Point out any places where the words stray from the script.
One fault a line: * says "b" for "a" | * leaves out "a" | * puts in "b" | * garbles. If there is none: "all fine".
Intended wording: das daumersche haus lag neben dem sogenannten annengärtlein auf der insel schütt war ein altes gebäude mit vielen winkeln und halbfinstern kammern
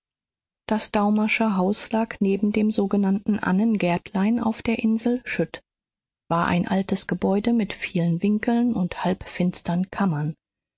all fine